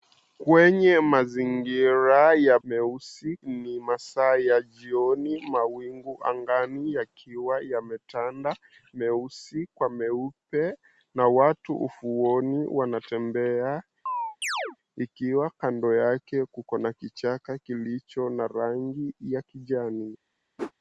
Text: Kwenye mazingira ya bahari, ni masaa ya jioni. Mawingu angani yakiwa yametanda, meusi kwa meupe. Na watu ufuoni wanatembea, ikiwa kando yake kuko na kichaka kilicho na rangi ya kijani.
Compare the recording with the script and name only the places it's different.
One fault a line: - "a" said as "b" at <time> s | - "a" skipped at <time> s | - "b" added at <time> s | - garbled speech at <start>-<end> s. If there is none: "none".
- "bahari" said as "meusi" at 2.6 s